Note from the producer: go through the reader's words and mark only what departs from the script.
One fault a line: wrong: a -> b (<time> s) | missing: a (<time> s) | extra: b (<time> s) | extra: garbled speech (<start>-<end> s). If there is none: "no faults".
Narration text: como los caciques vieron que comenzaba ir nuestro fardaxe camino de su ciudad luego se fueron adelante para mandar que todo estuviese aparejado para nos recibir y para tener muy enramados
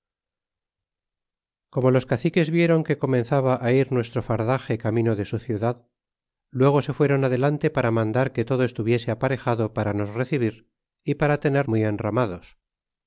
no faults